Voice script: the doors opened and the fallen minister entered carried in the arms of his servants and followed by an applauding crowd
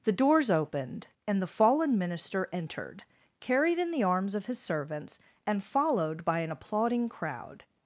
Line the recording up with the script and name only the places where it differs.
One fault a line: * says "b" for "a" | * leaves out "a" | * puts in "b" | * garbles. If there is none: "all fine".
all fine